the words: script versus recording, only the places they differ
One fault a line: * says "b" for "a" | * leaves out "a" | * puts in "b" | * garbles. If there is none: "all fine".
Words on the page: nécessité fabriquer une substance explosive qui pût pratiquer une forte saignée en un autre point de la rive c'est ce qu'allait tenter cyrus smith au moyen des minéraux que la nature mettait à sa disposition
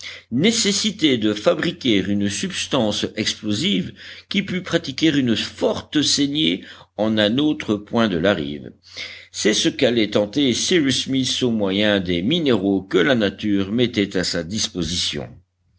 * puts in "de"